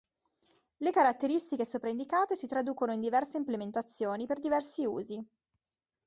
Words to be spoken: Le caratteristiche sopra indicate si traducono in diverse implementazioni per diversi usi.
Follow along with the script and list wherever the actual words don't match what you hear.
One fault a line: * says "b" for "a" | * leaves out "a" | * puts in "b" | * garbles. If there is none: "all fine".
all fine